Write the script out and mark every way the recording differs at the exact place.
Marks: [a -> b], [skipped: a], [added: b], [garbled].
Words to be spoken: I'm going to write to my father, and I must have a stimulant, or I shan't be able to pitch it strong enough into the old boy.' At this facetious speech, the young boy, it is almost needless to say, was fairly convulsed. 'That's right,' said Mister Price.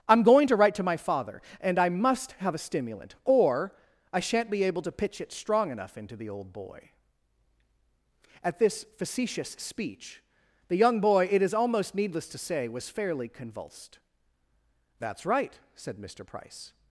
I'm going to write to my father, and I must have a stimulant, or I shan't be able to pitch it strong enough into the old boy.' At this facetious speech, the young boy, it is almost needless to say, was fairly convulsed. 'That's right,' said Mister Price.